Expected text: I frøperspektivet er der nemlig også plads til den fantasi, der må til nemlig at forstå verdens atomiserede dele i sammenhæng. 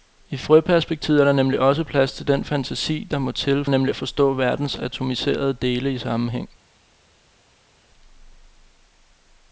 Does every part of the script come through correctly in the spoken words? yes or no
yes